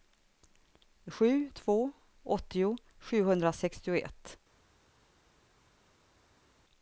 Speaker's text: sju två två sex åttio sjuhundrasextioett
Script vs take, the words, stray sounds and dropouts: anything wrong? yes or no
yes